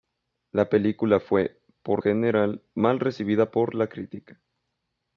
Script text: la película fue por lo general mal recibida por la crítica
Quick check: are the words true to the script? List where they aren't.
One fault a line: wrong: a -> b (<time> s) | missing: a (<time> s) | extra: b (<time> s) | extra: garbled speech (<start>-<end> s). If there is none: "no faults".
missing: lo (2.0 s)